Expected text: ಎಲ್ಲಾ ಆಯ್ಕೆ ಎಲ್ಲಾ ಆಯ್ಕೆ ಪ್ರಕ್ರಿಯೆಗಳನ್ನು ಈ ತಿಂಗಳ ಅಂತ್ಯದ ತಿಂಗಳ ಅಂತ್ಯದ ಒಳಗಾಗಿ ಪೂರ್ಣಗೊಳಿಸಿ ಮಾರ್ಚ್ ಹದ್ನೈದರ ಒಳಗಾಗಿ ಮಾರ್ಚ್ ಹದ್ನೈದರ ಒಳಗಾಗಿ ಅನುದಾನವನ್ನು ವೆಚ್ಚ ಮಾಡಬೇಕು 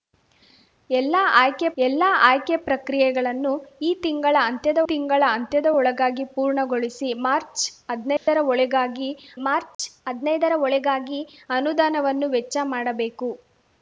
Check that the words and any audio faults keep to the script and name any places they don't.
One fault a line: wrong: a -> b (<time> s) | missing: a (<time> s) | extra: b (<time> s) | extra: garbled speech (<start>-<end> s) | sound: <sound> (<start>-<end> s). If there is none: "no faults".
sound: dropout (8.2-8.3 s)
sound: dropout (9.7-9.8 s)